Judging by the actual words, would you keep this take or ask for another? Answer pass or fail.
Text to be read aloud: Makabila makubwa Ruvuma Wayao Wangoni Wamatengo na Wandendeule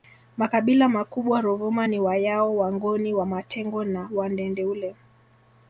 fail